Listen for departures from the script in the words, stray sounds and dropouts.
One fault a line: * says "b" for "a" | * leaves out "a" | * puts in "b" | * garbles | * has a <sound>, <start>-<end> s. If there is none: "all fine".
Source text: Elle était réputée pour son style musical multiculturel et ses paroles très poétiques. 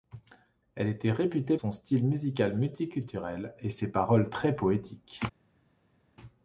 * leaves out "pour"